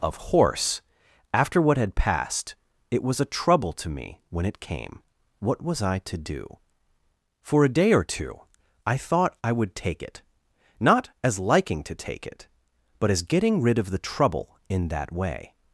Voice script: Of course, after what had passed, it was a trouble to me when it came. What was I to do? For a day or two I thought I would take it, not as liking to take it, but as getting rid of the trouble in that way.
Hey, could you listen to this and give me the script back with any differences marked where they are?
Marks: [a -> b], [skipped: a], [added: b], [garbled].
Of [course, -> horse] after what had passed, it was a trouble to me when it came. What was I to do? For a day or two I thought I would take it, not as liking to take it, but as getting rid of the trouble in that way.